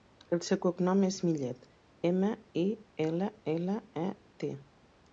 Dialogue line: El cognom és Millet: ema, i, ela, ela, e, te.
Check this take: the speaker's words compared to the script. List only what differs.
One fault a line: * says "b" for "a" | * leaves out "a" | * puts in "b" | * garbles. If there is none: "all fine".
* puts in "seu"